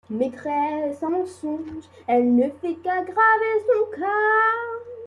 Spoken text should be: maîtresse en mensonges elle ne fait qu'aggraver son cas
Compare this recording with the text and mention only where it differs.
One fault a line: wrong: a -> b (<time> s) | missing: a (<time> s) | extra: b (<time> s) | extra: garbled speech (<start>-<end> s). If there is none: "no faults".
no faults